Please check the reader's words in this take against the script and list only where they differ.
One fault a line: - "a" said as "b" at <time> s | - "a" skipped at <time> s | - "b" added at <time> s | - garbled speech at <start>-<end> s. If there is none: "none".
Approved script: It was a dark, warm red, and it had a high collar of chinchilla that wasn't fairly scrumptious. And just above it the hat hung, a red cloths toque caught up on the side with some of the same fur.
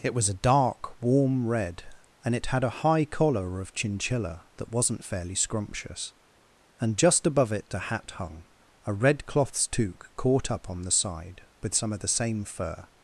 none